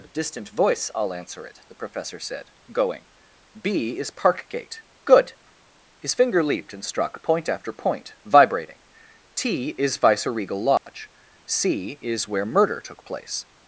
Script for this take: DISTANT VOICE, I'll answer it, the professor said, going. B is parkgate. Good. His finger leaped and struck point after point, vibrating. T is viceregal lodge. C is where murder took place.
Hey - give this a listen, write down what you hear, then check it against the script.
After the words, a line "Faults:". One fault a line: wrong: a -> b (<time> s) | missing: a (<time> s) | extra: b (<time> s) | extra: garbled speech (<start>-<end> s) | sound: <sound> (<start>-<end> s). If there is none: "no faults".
DISTANT VOICE, I'll answer it, the professor said, going. B is parkgate. Good. His finger leaped and struck point after point, vibrating. T is viceregal lodge. C is where murder took place.
Faults:
sound: dropout (10.8-10.9 s)